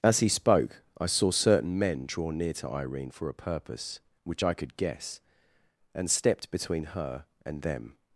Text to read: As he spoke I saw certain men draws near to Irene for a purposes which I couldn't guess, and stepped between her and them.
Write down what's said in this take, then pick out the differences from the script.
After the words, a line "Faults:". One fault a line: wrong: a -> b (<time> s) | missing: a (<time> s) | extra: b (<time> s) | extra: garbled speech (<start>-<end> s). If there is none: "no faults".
As he spoke I saw certain men draw near to Irene for a purpose which I could guess, and stepped between her and them.
Faults:
wrong: draws -> draw (2.0 s)
wrong: purposes -> purpose (3.3 s)
wrong: couldn't -> could (4.5 s)